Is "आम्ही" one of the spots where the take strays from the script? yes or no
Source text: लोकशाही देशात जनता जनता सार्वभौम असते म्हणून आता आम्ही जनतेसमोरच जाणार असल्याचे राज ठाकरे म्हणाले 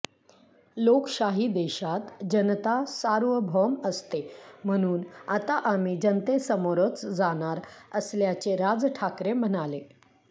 no